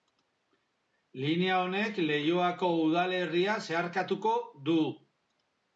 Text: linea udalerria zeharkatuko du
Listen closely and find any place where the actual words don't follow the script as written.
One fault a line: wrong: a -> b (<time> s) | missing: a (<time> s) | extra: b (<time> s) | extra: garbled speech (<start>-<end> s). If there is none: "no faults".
extra: honek leioako (1.6 s)